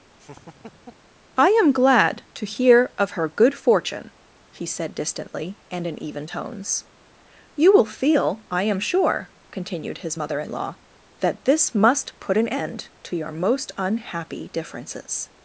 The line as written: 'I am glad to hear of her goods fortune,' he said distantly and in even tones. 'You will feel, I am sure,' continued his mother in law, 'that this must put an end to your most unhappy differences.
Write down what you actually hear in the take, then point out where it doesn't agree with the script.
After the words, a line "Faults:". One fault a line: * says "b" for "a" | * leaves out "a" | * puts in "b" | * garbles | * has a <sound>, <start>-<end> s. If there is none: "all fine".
'I am glad to hear of her good fortune,' he said distantly and in even tones. 'You will feel, I am sure,' continued his mother in law, 'that this must put an end to your most unhappy differences.
Faults:
* has a laugh, 0.2-1.1 s
* says "good" for "goods"